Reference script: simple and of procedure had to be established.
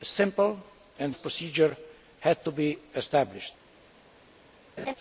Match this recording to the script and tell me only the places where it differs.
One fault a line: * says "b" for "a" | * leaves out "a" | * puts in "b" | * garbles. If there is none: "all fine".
all fine